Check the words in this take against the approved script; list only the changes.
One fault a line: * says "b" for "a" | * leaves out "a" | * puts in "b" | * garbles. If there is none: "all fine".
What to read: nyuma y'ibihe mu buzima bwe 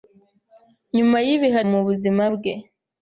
all fine